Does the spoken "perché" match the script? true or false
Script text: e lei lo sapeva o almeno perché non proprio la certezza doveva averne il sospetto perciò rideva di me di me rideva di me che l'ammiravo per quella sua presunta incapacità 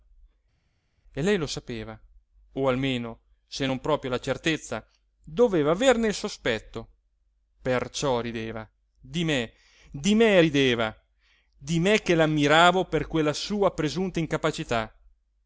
false